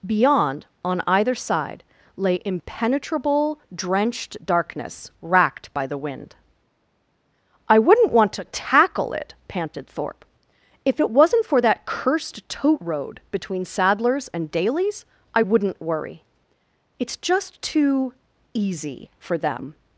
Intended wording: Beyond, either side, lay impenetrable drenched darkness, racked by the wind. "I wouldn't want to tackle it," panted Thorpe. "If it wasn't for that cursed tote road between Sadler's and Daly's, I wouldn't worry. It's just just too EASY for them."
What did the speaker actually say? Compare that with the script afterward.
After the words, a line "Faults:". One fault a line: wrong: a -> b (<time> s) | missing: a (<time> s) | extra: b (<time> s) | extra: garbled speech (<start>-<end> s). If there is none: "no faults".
Beyond, on either side, lay impenetrable drenched darkness, racked by the wind. "I wouldn't want to tackle it," panted Thorpe. "If it wasn't for that cursed tote road between Sadler's and Daly's, I wouldn't worry. It's just too EASY for them."
Faults:
extra: on (0.8 s)
missing: just (17.6 s)